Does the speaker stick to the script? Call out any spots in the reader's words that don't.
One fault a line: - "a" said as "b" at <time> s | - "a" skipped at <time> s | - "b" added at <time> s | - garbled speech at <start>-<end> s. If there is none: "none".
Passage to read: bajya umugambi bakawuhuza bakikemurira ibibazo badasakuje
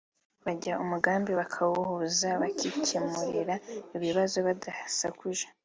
none